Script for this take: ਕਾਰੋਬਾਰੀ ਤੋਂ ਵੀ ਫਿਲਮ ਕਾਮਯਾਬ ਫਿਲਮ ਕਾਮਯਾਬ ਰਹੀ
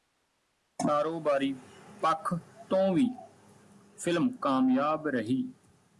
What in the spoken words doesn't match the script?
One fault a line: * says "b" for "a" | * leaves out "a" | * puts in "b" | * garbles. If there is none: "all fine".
* puts in "ਪੱਖ"
* leaves out "ਫਿਲਮ ਕਾਮਯਾਬ"